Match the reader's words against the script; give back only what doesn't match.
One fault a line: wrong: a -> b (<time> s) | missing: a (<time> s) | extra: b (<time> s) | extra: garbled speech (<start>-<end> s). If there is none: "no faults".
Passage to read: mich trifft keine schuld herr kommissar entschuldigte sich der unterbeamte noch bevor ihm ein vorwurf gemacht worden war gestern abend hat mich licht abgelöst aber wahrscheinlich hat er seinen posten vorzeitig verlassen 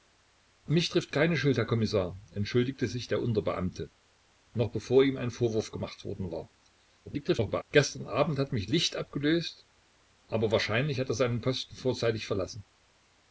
extra: garbled speech (7.1-7.6 s)